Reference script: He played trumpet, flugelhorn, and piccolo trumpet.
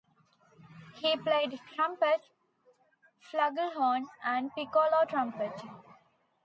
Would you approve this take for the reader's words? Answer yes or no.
yes